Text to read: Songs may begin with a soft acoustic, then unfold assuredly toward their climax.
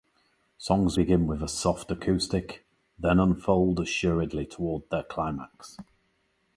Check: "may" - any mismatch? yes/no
yes